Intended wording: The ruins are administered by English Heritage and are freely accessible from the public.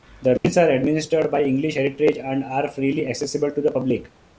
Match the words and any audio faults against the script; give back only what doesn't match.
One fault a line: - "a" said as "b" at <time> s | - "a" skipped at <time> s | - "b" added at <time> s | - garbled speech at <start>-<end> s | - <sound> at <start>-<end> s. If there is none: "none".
- dropout at 0.4-0.4 s
- "from" said as "to" at 3.5 s